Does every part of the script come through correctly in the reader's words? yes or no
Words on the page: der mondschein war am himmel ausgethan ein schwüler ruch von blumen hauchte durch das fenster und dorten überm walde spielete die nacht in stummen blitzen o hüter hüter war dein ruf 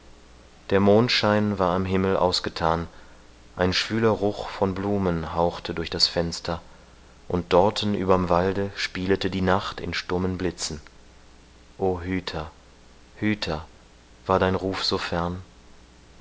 yes